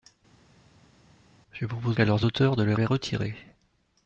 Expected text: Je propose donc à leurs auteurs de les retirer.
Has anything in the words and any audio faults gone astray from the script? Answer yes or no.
yes